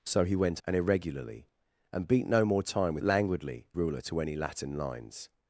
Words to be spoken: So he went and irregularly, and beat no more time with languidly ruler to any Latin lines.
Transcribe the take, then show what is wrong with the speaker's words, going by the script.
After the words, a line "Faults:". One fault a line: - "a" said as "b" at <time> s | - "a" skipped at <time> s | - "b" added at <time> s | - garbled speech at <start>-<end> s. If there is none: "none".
So he went and irregularly, and beat no more time with languidly ruler to any Latin lines.
Faults:
none